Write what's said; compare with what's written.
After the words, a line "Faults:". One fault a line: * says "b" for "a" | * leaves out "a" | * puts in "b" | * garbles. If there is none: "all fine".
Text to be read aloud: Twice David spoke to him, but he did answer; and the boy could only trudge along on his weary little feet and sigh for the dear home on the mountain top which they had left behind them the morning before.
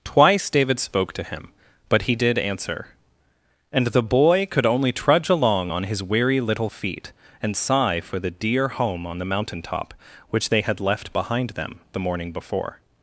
Twice David spoke to him, but he did answer; and the boy could only trudge along on his weary little feet and sigh for the dear home on the mountain top which they had left behind them the morning before.
Faults:
all fine